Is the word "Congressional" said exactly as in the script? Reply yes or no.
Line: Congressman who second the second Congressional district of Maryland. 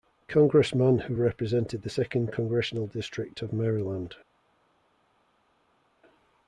yes